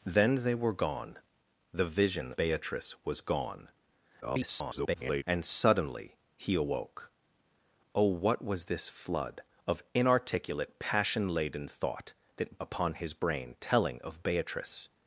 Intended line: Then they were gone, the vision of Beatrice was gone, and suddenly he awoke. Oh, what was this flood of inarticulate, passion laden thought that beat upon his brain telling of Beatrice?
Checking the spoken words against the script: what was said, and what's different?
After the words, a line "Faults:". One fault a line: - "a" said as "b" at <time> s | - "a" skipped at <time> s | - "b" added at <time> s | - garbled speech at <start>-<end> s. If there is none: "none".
Then they were gone, the vision Beatrice was gone, [garbled] and suddenly he awoke. Oh, what was this flood of inarticulate, passion laden thought that upon his brain telling of Beatrice?
Faults:
- "of" skipped at 2.3 s
- garbled speech at 4.2-5.2 s
- "beat" skipped at 12.6 s